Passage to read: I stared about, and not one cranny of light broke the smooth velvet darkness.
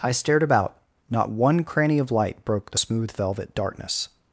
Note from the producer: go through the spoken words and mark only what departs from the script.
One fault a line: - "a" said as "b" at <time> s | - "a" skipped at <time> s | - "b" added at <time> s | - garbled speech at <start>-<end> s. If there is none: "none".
- "and" skipped at 0.8 s